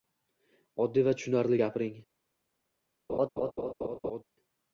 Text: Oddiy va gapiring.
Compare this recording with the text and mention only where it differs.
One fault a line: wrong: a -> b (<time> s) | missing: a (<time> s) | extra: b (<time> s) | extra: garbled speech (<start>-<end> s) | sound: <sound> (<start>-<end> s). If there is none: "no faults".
extra: tushunarli (1.2 s)
sound: laugh (3.1-4.2 s)